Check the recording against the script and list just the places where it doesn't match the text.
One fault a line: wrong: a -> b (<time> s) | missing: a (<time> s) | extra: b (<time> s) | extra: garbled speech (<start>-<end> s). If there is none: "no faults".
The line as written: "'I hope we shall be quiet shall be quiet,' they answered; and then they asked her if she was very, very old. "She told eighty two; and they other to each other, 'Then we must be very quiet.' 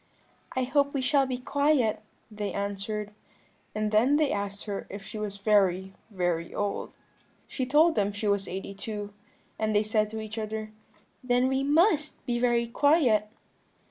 missing: shall be quiet (2.0 s)
extra: them she was (8.0 s)
wrong: other -> said (9.8 s)